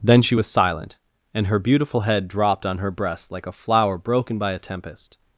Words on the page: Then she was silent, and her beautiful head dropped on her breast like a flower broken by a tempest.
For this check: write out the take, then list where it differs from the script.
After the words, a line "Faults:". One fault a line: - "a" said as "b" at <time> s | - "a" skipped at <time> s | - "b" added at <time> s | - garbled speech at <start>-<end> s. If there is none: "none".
Then she was silent, and her beautiful head dropped on her breast like a flower broken by a tempest.
Faults:
none